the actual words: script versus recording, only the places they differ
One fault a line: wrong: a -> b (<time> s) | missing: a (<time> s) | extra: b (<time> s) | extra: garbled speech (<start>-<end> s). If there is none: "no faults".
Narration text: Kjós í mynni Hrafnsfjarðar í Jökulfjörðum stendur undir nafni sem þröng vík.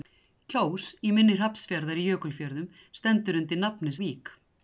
missing: sem þröng (4.0 s)